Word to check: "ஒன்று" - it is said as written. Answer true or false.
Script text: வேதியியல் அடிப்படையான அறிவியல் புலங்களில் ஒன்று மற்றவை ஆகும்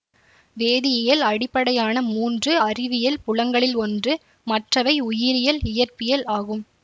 true